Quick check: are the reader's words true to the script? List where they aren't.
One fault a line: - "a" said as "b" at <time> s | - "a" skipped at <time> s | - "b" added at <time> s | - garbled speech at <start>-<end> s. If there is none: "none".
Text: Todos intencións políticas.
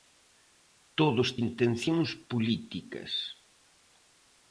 none